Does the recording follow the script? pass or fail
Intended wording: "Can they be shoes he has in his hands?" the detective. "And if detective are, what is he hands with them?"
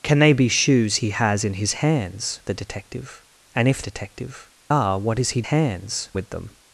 pass